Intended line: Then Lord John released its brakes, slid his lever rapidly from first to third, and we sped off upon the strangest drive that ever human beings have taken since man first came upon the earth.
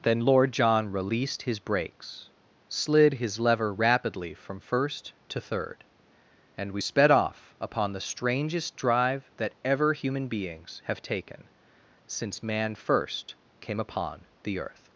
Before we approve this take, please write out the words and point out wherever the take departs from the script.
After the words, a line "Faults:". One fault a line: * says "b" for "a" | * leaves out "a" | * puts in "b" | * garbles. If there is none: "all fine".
Then Lord John released his brakes, slid his lever rapidly from first to third, and we sped off upon the strangest drive that ever human beings have taken since man first came upon the earth.
Faults:
* says "his" for "its"